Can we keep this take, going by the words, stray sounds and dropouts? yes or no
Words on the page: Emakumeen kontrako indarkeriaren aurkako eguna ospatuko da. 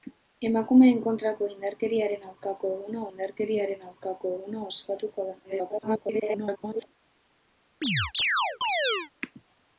no